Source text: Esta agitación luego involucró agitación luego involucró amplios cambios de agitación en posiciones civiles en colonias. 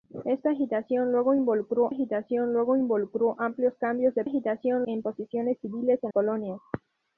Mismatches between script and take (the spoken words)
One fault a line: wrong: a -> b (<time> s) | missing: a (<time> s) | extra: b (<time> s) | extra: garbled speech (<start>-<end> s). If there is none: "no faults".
no faults